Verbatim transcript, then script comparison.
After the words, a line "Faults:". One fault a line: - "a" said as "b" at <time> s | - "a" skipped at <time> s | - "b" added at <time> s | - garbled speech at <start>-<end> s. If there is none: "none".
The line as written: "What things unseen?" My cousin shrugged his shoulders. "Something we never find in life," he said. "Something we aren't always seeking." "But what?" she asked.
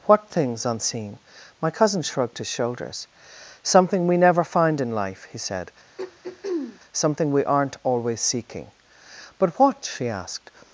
"What things unseen?" My cousin shrugged his shoulders. "Something we never find in life," he said. "Something we aren't always seeking." "But what?" she asked.
Faults:
none